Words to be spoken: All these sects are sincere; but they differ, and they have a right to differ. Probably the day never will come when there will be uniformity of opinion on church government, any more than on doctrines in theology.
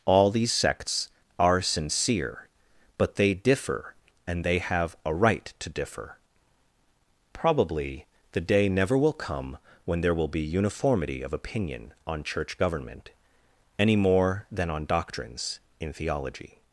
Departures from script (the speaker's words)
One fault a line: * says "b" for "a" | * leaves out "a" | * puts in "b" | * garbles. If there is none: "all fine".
all fine